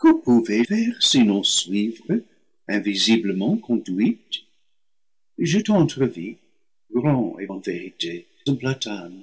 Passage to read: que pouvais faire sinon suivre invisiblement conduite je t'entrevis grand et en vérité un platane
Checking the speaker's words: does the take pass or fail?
pass